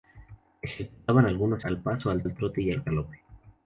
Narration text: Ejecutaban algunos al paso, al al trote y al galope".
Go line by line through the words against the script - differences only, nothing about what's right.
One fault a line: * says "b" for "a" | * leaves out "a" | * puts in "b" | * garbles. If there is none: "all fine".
all fine